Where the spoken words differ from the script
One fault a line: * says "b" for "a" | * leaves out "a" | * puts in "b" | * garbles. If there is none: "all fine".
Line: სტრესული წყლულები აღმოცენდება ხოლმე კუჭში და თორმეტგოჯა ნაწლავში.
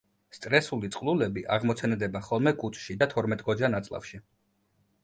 all fine